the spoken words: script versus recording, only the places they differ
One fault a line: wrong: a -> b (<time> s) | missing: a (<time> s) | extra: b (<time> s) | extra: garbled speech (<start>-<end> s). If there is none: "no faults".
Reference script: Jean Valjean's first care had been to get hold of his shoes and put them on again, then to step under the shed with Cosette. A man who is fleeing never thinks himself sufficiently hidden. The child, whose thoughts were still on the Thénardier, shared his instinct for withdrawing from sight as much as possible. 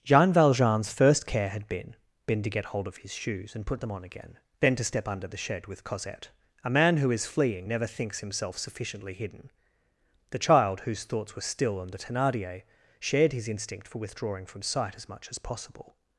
extra: been (2.2 s)